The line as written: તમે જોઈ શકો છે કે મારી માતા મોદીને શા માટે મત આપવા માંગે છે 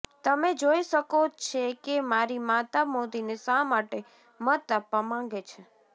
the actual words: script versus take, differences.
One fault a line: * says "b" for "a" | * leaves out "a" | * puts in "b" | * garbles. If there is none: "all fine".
all fine